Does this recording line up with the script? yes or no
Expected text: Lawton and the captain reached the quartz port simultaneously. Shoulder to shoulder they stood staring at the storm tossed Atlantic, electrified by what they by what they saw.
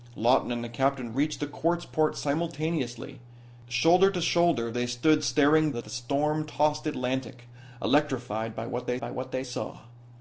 yes